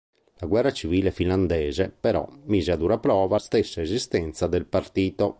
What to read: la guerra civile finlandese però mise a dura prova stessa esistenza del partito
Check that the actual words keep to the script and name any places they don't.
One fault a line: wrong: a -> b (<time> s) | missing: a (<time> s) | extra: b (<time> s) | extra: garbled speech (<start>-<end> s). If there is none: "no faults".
no faults